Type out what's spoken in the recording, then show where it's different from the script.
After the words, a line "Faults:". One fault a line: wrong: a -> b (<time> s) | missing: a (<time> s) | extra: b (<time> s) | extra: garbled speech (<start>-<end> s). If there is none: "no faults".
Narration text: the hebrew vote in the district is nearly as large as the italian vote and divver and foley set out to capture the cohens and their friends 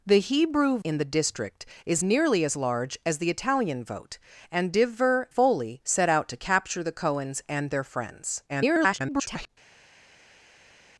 the hebrew in the district is nearly as large as the italian vote and divver foley set out to capture the cohens and their friends [garbled]
Faults:
missing: vote (0.8 s)
missing: and (5.3 s)
extra: garbled speech (8.5-9.5 s)